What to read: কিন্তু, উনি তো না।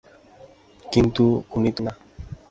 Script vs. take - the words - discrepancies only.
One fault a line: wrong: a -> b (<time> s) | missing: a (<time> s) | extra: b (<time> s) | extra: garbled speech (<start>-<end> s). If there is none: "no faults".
no faults